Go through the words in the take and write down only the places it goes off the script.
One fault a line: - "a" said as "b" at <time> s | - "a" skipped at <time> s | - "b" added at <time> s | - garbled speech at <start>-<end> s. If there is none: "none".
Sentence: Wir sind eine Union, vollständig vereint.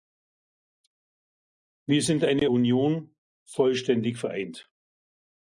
none